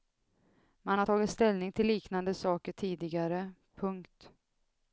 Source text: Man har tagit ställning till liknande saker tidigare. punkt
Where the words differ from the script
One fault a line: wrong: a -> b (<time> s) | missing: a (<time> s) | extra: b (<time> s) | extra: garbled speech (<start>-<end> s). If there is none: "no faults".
no faults